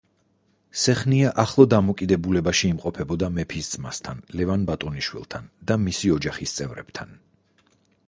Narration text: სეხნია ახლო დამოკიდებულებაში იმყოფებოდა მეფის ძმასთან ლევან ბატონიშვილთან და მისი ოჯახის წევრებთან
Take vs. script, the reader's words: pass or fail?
pass